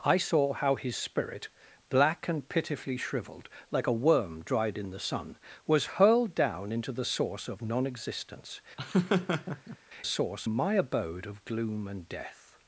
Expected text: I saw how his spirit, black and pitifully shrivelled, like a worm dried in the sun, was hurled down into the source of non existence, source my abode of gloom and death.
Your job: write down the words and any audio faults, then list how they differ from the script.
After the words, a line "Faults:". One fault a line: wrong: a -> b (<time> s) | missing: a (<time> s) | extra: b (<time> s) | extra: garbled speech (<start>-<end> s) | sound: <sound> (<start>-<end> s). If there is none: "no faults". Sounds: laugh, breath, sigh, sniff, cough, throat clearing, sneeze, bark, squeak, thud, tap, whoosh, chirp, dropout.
I saw how his spirit, black and pitifully shrivelled, like a worm dried in the sun, was hurled down into the source of non existence, source my abode of gloom and death.
Faults:
sound: laugh (8.8-9.8 s)